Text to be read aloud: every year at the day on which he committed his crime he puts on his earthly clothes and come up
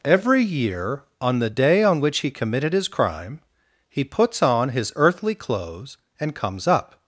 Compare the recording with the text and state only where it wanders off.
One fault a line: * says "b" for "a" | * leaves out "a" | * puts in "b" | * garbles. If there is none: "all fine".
* says "on" for "at"
* says "comes" for "come"